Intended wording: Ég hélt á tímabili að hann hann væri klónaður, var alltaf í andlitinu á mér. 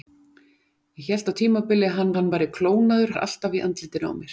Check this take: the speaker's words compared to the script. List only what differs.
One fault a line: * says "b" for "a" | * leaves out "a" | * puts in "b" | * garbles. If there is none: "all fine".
all fine